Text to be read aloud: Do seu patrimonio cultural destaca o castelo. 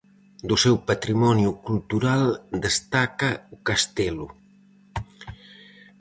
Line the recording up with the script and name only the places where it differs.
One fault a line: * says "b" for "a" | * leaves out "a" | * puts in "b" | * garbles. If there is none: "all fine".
all fine